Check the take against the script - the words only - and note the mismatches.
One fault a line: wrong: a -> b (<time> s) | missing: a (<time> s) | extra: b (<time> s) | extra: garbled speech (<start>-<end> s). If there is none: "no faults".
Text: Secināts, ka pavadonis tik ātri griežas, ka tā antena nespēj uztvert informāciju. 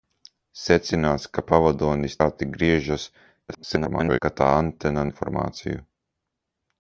missing: tik (2.1 s)
extra: garbled speech (3.5-4.2 s)
missing: nespēj uztvert (5.1 s)